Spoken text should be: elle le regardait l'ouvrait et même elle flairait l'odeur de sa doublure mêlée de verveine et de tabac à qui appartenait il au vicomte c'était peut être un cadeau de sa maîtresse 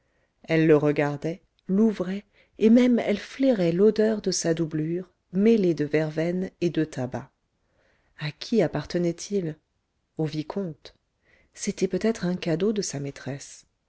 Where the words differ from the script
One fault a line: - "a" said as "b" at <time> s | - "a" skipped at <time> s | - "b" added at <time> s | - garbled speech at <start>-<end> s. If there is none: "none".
none